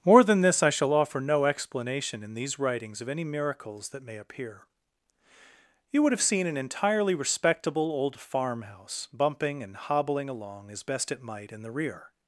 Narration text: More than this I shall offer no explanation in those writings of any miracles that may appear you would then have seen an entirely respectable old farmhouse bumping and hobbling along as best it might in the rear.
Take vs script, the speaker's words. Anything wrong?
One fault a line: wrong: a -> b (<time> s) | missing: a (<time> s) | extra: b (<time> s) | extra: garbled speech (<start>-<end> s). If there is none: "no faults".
wrong: those -> these (2.3 s)
missing: then (6.1 s)